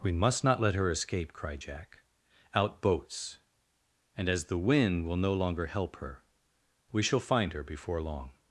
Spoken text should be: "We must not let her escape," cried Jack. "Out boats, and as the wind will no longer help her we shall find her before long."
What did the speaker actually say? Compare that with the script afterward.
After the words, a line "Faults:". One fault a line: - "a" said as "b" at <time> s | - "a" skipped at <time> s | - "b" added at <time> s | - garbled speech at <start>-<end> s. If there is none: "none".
"We must not let her escape," cried Jack. "Out boats, and as the wind will no longer help her we shall find her before long."
Faults:
none